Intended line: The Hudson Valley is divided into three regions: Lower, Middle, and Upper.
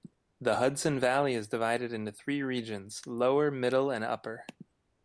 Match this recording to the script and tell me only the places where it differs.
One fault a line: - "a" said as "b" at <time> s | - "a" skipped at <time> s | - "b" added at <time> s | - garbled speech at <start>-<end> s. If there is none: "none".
none